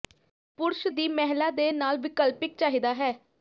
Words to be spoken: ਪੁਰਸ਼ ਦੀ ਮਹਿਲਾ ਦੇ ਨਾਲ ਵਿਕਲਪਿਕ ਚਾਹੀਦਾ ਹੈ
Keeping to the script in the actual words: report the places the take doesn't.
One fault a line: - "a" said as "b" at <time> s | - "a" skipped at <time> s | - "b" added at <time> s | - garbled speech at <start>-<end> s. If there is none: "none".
none